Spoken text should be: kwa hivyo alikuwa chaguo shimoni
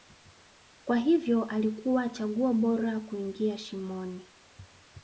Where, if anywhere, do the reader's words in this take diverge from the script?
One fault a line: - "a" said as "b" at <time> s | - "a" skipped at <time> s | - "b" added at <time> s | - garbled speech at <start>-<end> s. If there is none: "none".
- "bora kuingia" added at 2.5 s